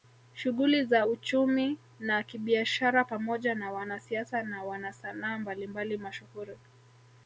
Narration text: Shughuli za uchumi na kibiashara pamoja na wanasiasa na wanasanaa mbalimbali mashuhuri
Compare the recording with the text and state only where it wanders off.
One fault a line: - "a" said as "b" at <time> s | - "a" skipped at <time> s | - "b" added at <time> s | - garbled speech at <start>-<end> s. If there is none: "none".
none